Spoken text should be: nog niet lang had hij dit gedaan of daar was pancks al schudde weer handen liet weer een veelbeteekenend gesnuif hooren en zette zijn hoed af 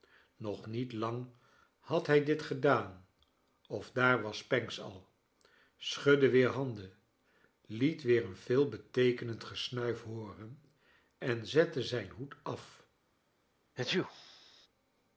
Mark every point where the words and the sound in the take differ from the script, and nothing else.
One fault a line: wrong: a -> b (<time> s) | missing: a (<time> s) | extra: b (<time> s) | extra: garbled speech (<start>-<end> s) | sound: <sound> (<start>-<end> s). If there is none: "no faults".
sound: sneeze (13.8-14.7 s)